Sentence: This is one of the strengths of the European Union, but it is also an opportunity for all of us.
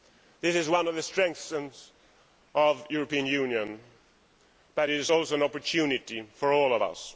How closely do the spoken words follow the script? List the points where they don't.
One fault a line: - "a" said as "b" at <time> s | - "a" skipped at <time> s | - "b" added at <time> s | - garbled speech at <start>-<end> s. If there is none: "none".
none